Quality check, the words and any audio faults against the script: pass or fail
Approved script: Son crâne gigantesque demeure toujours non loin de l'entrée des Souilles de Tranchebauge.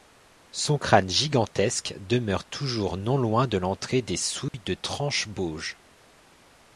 fail